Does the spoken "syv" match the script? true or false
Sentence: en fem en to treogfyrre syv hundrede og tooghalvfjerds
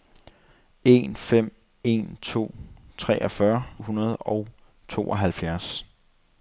false